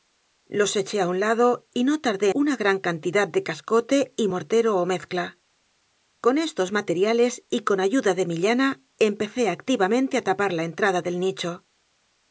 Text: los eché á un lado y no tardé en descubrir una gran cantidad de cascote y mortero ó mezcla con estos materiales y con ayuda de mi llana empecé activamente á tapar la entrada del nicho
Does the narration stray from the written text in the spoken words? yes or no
yes